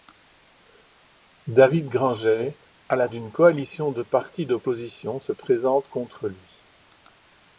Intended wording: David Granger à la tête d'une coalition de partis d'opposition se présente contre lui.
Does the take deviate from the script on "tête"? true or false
true